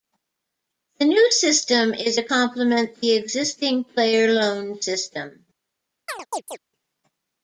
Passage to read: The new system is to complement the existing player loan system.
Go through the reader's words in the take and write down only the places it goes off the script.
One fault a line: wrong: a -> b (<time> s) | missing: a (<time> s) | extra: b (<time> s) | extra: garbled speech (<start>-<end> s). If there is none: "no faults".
no faults